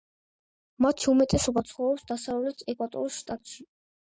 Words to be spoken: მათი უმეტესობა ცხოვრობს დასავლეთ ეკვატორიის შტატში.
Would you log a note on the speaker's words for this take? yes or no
no